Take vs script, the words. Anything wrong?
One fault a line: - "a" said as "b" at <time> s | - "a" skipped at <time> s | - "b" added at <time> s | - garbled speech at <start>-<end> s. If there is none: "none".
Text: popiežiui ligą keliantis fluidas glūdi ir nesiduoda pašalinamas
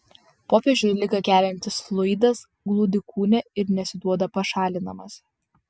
- "kūne" added at 3.1 s